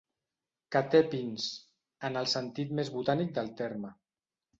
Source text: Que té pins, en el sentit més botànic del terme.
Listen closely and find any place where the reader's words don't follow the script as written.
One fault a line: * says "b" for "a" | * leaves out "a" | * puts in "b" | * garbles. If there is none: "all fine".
all fine